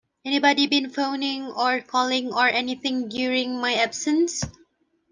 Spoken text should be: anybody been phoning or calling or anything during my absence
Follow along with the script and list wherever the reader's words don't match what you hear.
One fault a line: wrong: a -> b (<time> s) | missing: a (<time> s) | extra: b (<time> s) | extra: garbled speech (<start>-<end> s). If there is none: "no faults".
no faults